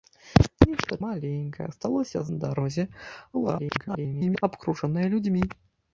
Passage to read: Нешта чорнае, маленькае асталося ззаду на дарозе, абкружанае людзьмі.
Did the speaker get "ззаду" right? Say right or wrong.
wrong